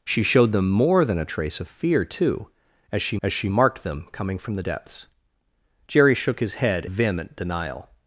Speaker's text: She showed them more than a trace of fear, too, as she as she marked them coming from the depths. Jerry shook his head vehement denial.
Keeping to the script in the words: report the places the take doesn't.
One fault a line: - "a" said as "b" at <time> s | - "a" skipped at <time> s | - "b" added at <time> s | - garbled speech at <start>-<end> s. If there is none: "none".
none